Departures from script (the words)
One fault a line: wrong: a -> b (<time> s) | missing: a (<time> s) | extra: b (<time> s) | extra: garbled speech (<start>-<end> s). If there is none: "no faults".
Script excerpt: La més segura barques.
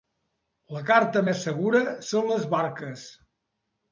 extra: carta (0.9 s)
extra: són les (2.1 s)